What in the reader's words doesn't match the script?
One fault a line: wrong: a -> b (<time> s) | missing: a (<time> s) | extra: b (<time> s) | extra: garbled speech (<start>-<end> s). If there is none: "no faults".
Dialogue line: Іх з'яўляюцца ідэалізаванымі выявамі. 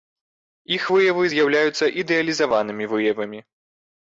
extra: выявы (0.9 s)